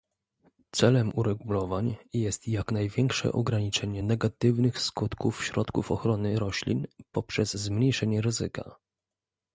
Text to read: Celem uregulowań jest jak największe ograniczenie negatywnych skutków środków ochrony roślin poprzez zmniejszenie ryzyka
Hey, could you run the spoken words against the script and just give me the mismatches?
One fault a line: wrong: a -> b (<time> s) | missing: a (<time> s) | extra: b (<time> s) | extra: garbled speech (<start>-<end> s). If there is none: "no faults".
no faults